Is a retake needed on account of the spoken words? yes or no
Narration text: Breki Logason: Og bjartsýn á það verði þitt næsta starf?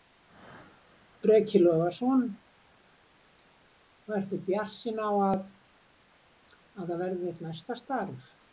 yes